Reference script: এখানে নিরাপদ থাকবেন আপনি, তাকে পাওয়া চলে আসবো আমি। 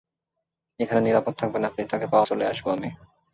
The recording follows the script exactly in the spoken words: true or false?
true